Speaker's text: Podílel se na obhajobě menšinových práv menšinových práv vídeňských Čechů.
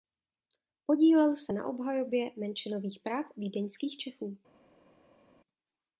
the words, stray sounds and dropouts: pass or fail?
fail